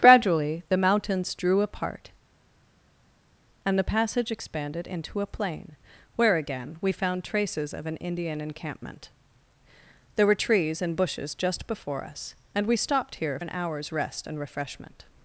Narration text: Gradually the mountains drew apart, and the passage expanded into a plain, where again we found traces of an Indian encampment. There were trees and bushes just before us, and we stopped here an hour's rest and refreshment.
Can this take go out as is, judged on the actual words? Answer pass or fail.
pass